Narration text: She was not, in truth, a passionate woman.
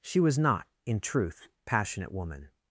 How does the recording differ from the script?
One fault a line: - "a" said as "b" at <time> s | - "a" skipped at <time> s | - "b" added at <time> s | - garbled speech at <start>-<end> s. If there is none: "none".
- "a" skipped at 1.5 s